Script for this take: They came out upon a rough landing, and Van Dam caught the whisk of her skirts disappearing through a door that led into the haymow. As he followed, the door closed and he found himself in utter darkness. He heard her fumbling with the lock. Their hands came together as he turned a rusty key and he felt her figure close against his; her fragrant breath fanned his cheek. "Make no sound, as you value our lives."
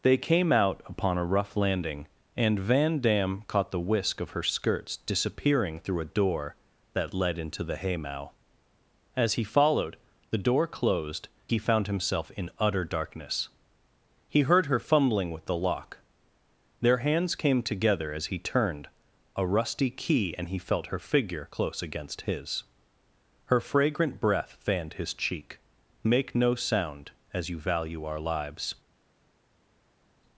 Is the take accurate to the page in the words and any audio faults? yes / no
no